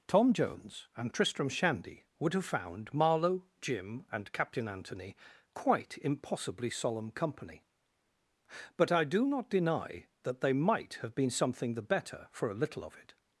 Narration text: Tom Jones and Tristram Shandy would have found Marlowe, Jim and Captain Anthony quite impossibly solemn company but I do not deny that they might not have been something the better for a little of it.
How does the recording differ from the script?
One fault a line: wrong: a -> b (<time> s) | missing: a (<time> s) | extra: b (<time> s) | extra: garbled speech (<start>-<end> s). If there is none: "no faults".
missing: not (10.9 s)